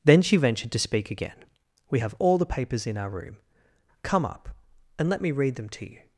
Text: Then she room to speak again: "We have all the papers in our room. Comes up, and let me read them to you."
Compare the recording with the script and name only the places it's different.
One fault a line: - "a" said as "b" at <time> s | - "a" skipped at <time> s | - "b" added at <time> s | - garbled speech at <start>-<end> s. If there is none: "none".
- "room" said as "ventured" at 0.4 s
- "Comes" said as "Come" at 4.0 s